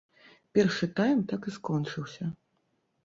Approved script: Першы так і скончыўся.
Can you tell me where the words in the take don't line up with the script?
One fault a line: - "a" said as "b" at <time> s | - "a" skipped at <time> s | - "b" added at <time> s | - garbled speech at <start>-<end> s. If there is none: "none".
- "тайм" added at 1.0 s